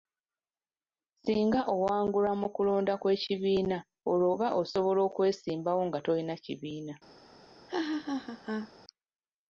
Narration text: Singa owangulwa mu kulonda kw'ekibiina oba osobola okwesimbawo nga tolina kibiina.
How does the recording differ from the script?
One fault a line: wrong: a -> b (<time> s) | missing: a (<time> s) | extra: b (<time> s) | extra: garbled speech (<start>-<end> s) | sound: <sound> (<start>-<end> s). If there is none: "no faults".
extra: olwo (4.1 s)
sound: laugh (7.7-8.7 s)